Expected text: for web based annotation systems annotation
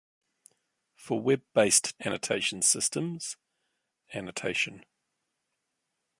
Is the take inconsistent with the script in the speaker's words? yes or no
no